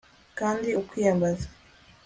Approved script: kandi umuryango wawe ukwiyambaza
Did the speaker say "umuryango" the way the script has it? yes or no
no